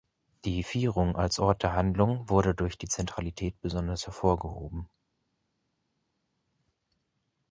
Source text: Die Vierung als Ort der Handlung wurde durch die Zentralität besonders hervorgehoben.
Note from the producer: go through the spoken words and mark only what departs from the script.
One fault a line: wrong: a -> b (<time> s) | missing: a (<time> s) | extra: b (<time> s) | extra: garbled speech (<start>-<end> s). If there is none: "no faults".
no faults